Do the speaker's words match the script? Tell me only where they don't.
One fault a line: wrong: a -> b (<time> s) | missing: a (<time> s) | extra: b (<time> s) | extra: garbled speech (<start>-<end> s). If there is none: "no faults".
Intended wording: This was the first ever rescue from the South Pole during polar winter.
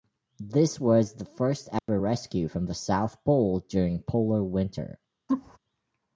no faults